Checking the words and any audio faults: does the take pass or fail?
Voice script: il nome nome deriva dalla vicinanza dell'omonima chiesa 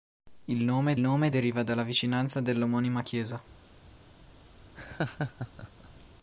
fail